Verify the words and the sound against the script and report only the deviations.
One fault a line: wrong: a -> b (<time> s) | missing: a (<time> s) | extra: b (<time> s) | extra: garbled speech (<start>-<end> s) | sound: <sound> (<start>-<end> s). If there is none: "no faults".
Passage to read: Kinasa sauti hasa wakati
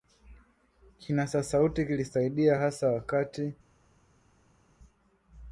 extra: kilisaidia (1.9 s)